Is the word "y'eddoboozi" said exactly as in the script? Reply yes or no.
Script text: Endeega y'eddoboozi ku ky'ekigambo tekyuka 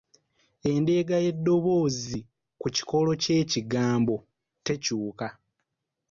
yes